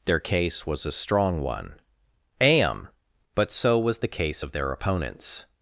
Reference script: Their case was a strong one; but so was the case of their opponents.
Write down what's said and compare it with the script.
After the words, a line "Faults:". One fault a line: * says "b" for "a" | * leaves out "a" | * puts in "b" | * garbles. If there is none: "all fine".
Their case was a strong one; am but so was the case of their opponents.
Faults:
* puts in "am"